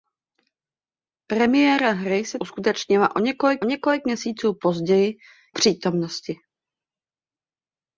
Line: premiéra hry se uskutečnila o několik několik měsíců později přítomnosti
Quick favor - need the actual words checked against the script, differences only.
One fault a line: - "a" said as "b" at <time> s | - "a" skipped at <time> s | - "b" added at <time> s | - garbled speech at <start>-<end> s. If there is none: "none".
none